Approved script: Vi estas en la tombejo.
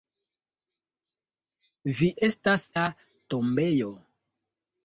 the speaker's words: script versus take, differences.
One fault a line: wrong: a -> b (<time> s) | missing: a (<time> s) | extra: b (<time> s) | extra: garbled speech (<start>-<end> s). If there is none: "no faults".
missing: en (2.7 s)